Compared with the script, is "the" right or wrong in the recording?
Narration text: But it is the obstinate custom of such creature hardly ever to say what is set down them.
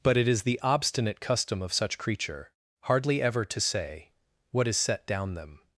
right